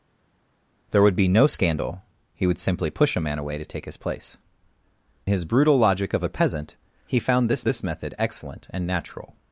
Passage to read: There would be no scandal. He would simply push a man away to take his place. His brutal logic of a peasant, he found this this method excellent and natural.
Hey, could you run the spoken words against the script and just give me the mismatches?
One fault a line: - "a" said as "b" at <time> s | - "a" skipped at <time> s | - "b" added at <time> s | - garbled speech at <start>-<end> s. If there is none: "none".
none